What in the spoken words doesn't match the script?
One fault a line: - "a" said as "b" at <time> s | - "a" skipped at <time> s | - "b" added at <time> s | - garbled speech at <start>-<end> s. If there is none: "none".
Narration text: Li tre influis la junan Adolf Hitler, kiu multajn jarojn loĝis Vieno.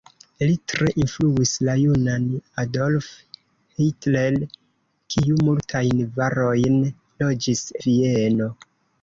none